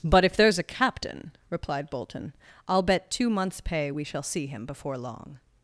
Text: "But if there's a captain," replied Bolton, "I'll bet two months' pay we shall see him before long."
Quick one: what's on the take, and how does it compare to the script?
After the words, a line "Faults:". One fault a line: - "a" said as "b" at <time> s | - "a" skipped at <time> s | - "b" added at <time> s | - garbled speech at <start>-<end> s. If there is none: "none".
"But if there's a captain," replied Bolton, "I'll bet two months' pay we shall see him before long."
Faults:
none